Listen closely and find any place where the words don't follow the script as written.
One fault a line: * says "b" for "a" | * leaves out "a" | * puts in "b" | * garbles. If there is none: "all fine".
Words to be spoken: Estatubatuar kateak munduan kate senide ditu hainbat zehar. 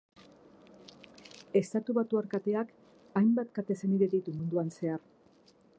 * says "hainbat" for "munduan"
* says "munduan" for "hainbat"